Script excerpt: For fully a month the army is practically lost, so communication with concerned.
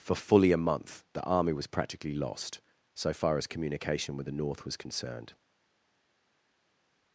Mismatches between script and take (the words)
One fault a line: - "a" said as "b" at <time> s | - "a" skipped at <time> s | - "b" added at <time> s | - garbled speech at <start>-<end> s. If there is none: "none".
- "is" said as "was" at 1.5 s
- "far as" added at 3.1 s
- "the North was" added at 4.3 s